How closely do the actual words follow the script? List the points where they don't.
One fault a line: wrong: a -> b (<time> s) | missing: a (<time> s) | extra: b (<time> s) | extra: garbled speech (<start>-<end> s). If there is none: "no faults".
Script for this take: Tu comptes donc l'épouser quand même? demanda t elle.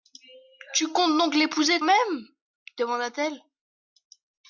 missing: quand (1.8 s)